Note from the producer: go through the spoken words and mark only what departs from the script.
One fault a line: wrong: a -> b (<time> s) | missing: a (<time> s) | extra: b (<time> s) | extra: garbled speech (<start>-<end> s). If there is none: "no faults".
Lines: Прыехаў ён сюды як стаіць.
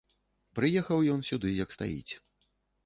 no faults